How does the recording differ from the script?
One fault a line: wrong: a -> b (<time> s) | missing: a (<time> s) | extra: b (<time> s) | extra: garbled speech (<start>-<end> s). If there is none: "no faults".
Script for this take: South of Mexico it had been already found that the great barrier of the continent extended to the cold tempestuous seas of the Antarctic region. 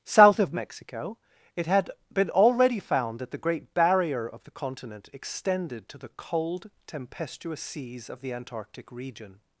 no faults